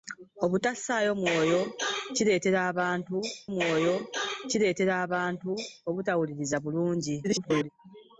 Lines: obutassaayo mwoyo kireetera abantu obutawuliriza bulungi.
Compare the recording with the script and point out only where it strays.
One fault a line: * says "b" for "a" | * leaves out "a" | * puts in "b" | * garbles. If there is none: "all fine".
* puts in "mwoyo kireetera abantu"
* garbles